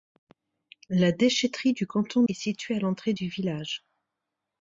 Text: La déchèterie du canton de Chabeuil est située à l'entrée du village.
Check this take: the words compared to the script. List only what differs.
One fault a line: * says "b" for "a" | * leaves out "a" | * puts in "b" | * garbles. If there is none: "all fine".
* leaves out "de Chabeuil"